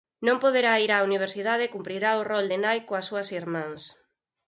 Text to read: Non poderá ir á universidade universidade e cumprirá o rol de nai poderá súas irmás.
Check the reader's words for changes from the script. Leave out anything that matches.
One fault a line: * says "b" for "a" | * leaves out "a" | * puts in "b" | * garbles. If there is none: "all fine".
* leaves out "universidade"
* says "coas" for "poderá"